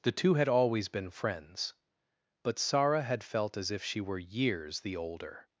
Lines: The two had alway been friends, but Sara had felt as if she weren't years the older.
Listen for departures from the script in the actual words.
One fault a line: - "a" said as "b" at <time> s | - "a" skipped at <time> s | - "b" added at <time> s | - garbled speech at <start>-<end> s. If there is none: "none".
- "alway" said as "always" at 0.5 s
- "weren't" said as "were" at 4.0 s